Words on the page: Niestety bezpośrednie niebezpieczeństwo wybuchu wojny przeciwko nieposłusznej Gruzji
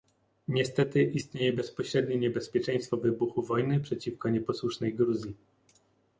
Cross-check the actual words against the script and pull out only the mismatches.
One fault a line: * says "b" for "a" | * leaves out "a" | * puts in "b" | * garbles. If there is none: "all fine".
* puts in "istnieje"